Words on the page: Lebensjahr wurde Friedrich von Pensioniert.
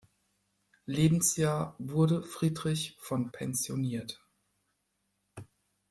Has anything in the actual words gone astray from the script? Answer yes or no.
no